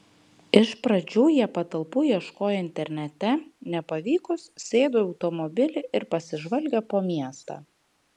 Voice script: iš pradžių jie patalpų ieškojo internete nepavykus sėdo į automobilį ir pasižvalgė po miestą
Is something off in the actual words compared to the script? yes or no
no